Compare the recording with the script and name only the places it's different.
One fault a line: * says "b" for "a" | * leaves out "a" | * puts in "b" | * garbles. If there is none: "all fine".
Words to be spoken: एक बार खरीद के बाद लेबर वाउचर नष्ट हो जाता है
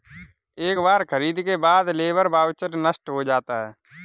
all fine